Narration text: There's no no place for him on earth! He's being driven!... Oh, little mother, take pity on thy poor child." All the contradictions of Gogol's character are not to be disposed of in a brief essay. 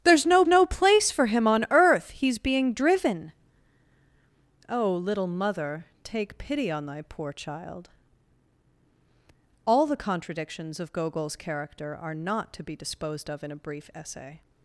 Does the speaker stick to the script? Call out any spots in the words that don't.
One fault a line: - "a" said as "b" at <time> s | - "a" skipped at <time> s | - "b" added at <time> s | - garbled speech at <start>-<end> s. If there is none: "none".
none